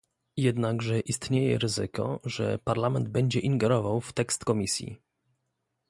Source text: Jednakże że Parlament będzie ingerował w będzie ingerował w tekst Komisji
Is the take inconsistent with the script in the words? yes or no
yes